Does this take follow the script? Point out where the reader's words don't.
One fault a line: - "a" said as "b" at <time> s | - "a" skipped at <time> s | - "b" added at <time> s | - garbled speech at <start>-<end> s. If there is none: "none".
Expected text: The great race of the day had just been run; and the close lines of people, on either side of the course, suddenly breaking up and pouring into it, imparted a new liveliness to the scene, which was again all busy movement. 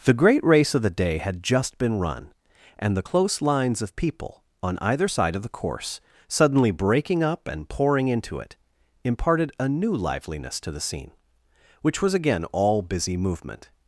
none